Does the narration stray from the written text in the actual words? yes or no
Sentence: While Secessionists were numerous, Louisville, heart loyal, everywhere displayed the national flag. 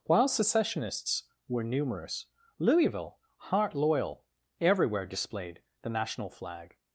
no